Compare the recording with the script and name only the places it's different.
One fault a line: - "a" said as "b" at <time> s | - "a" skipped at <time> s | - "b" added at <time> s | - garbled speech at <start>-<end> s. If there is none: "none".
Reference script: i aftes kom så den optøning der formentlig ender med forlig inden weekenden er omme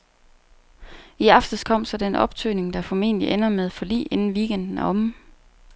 none